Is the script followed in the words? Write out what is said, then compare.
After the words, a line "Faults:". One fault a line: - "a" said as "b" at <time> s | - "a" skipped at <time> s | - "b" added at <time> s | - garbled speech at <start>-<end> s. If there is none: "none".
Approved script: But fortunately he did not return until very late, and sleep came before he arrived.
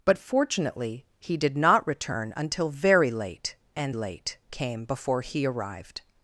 But fortunately he did not return until very late, and late came before he arrived.
Faults:
- "sleep" said as "late" at 3.9 s